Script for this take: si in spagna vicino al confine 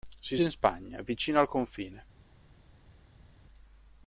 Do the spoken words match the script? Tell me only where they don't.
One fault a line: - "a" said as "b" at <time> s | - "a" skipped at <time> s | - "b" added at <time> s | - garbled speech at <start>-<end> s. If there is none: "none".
none